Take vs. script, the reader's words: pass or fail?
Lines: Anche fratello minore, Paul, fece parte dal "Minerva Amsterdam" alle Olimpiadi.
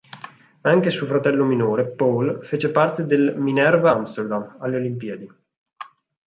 fail